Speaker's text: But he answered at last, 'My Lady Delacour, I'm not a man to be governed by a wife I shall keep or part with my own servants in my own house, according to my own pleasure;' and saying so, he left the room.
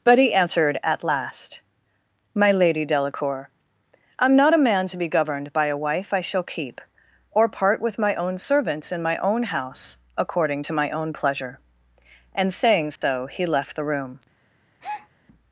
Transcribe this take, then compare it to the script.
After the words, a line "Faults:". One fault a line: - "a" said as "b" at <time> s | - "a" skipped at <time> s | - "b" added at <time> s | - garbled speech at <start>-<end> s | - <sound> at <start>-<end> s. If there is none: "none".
But he answered at last, 'My Lady Delacour, I'm not a man to be governed by a wife I shall keep or part with my own servants in my own house, according to my own pleasure;' and saying so, he left the room.
Faults:
- dropout at 13.0-13.0 s
- breath at 14.8-15.1 s